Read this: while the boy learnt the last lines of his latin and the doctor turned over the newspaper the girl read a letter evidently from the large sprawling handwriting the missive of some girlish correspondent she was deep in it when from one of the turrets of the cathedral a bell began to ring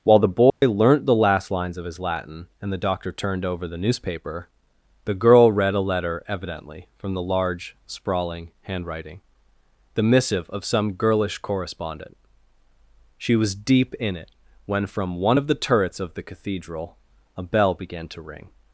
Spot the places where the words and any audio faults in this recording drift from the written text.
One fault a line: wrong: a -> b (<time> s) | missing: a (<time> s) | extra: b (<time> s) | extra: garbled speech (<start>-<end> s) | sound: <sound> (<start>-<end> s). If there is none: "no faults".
sound: dropout (0.5-0.6 s)